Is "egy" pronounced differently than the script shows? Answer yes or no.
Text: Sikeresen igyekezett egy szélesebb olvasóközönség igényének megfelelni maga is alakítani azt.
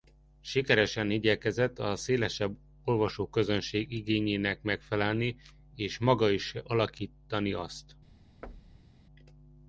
yes